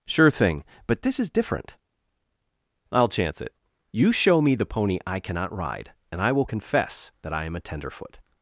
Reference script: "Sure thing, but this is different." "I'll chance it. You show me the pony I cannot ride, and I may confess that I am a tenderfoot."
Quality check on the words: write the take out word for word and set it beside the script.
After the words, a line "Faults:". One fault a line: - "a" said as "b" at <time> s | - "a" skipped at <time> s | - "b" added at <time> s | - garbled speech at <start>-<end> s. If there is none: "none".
"Sure thing, but this is different." "I'll chance it. You show me the pony I cannot ride, and I will confess that I am a tenderfoot."
Faults:
- "may" said as "will" at 6.3 s